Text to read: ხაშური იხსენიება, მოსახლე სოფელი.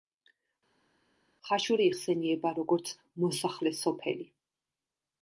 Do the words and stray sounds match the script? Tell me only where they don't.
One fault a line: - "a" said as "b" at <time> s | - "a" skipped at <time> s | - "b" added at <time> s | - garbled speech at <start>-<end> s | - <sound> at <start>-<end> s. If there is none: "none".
- "როგორც" added at 2.6 s